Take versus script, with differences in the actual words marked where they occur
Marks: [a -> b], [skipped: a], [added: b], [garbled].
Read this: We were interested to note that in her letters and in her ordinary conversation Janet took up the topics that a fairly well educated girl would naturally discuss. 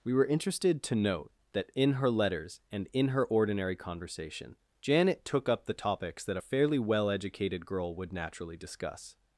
We were interested to note that in her letters and in her ordinary conversation Janet took up the topics that a fairly well educated girl would naturally discuss.